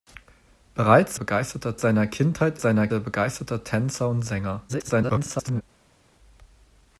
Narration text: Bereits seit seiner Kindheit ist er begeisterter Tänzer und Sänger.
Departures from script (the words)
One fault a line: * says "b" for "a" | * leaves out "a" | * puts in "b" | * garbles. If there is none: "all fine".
* says "begeisterter" for "seit"
* says "seiner" for "ist"
* garbles